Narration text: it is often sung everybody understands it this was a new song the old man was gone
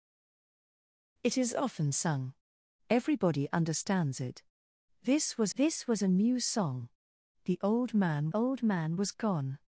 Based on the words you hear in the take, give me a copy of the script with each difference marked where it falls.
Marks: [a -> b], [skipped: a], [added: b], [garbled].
it is often sung everybody understands it this was [added: this was] a new song the old man [added: old man] was gone